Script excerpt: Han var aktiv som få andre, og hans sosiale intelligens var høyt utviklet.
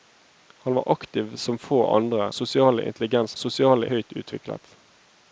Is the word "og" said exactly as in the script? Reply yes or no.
no